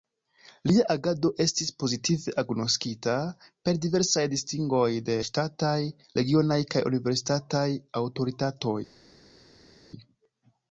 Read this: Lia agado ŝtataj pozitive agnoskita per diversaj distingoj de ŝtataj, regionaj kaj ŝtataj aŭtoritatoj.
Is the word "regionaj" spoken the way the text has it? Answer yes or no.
yes